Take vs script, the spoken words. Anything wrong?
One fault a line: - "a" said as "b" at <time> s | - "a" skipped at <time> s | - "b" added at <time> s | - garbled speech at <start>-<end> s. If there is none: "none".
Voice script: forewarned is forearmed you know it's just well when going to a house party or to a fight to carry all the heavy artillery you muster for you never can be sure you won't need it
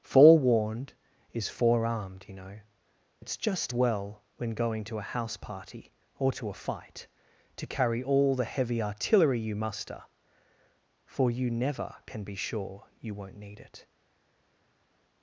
none